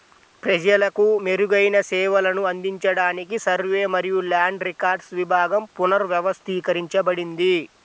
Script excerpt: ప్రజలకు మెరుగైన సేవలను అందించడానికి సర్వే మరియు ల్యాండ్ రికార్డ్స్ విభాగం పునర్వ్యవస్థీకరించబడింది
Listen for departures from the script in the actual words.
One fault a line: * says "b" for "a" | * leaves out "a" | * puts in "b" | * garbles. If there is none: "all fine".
all fine